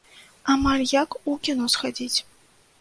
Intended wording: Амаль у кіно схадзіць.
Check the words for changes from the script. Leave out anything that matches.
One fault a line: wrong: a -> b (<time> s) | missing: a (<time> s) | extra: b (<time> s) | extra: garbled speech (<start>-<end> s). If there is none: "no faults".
extra: як (0.9 s)